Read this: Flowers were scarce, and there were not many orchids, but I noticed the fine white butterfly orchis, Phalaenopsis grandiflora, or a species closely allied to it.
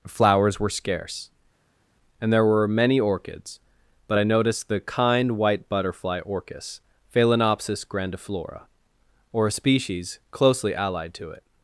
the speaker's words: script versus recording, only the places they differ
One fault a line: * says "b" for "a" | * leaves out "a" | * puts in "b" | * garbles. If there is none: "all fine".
* leaves out "not"
* says "kind" for "fine"